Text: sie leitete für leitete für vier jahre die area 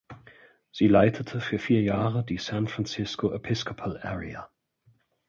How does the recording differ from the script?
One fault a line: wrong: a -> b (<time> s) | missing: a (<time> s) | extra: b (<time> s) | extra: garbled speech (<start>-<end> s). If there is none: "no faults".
missing: leitete für (1.6 s)
extra: san francisco episcopal (2.4 s)